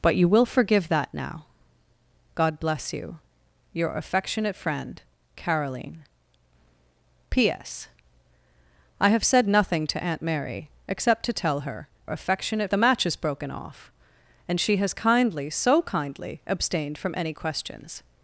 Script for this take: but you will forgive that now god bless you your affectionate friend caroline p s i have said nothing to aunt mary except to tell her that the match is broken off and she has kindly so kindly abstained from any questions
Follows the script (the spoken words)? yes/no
no